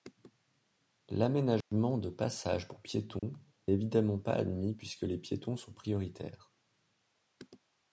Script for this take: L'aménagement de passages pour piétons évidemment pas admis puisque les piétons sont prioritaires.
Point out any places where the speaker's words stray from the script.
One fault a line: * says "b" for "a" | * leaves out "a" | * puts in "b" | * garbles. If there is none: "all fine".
all fine